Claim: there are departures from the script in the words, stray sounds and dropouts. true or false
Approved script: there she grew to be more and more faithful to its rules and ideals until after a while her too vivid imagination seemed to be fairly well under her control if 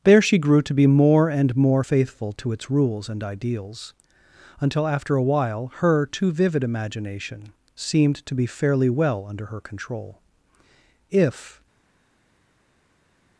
false